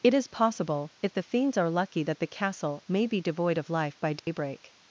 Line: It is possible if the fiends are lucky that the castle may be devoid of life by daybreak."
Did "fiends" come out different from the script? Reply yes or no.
no